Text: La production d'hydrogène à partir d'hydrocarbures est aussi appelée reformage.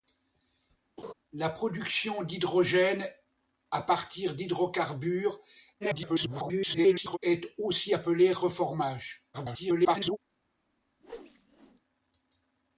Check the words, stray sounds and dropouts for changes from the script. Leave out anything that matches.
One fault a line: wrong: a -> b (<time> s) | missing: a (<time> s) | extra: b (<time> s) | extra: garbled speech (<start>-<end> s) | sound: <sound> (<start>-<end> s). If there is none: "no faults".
sound: laugh (1.0-1.1 s)
extra: garbled speech (5.8-7.2 s)
extra: garbled speech (9.3-10.2 s)
sound: whoosh (11.0-11.8 s)